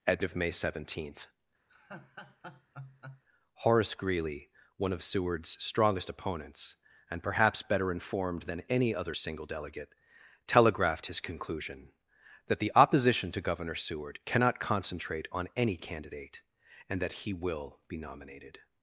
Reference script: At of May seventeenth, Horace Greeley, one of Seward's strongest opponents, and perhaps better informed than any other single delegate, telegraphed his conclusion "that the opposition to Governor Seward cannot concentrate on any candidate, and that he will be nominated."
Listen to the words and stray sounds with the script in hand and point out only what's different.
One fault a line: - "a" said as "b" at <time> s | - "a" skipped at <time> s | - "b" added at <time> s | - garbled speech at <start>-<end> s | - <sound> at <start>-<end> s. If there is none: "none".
- laugh at 1.7-3.2 s